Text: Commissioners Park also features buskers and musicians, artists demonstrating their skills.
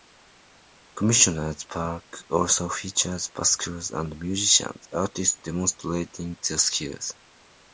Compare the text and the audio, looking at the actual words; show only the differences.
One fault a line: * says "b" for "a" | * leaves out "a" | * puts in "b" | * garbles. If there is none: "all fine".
all fine